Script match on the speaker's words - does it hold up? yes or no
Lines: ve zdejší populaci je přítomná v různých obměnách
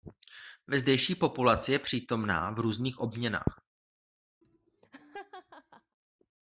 yes